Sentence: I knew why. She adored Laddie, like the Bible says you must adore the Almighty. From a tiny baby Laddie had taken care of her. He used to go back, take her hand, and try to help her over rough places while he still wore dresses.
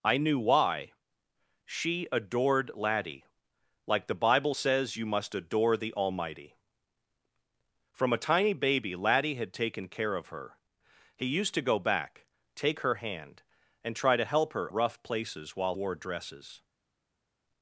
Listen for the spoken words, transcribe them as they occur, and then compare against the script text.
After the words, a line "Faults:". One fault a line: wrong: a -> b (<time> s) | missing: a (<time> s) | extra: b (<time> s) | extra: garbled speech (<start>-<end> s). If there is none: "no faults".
I knew why. She adored Laddie, like the Bible says you must adore the Almighty. From a tiny baby Laddie had taken care of her. He used to go back, take her hand, and try to help her rough places while wore dresses.
Faults:
missing: over (14.7 s)
missing: he still (15.7 s)